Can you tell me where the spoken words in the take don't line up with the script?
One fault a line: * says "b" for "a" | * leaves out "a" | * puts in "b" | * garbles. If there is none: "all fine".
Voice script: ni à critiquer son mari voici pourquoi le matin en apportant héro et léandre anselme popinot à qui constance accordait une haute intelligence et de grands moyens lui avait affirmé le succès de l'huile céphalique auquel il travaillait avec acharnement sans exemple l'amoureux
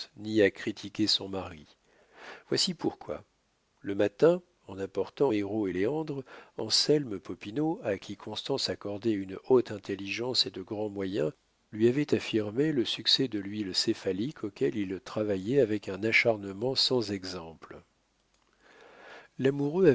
* puts in "un"